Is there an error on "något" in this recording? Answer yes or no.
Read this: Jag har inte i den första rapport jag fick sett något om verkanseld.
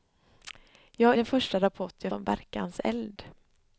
yes